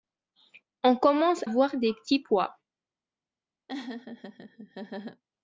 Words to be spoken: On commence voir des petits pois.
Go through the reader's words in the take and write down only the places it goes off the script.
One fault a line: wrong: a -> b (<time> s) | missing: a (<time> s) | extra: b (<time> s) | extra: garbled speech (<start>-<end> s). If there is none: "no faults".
no faults